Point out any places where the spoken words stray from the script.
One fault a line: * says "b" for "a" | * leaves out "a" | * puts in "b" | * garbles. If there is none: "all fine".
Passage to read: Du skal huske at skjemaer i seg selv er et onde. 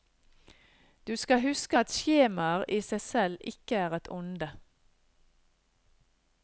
* puts in "ikke"